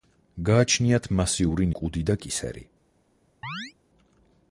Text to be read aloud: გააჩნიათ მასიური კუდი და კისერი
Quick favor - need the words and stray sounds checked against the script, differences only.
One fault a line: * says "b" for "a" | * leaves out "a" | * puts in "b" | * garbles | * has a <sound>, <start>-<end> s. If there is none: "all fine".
* has a chirp, 3.4-3.7 s